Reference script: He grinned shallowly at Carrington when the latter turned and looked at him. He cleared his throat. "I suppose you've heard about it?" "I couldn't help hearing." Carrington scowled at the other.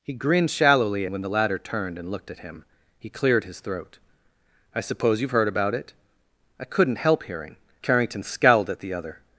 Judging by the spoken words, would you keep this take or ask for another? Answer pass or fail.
fail